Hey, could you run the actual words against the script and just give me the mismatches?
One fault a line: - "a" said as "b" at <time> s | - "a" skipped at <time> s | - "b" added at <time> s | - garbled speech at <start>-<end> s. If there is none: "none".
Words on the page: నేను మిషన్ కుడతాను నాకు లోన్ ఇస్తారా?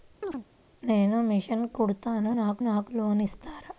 - "నాకు" added at 2.6 s